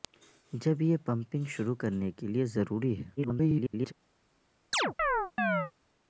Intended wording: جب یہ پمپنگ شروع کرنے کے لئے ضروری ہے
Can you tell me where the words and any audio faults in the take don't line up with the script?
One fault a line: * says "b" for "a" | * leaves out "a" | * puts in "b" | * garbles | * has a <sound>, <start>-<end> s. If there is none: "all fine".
* garbles
* has a chirp, 4.7-5.7 s